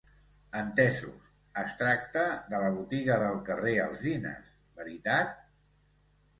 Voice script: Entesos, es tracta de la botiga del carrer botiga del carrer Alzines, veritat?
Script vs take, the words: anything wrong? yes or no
yes